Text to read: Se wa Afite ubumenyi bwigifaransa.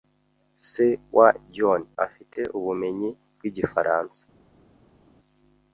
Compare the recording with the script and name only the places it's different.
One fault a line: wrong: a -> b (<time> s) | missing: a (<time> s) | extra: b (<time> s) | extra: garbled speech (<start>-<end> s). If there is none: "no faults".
extra: John (1.6 s)